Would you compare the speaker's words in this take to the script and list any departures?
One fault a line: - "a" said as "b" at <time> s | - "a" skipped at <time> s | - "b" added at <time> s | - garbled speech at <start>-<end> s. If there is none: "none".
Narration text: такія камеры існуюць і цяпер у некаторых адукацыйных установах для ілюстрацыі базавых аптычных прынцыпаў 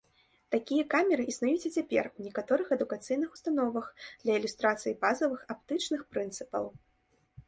none